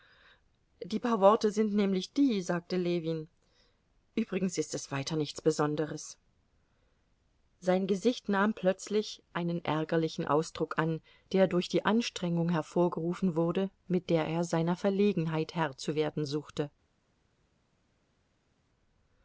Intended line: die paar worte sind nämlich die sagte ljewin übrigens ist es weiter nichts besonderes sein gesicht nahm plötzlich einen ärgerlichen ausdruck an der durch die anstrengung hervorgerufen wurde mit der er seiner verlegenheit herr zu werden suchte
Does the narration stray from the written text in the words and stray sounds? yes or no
no